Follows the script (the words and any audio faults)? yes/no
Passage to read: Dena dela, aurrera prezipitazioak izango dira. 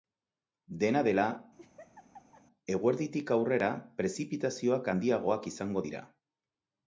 no